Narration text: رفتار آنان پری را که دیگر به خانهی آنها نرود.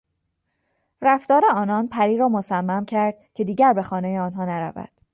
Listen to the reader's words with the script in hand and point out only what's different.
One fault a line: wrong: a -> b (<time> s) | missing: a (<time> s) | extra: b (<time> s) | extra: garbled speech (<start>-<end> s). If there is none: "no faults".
extra: مصمم کرد (2.3 s)